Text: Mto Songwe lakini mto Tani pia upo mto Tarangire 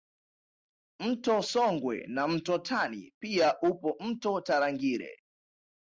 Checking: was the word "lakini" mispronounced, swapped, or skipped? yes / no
yes